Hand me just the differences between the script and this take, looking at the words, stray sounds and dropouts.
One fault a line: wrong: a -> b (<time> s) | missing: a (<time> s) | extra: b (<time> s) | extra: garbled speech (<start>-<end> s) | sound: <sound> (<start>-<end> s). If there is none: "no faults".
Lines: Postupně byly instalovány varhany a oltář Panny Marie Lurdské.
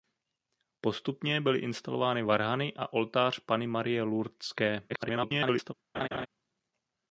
extra: garbled speech (4.9-5.7 s)
sound: laugh (5.9-6.3 s)